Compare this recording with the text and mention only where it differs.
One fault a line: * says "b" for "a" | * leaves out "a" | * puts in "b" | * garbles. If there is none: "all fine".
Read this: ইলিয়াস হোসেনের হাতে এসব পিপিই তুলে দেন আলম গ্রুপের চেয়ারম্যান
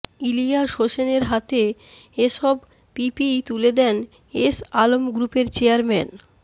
* puts in "এস"